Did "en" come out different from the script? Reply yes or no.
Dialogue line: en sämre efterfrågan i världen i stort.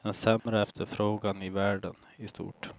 no